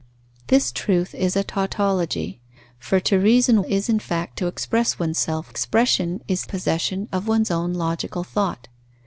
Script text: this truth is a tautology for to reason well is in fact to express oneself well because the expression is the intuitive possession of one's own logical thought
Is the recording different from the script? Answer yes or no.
yes